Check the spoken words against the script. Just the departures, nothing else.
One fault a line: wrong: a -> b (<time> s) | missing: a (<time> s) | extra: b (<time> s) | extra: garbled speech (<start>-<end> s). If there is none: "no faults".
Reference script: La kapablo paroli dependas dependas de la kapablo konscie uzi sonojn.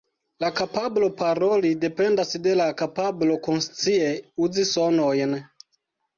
missing: dependas (2.3 s)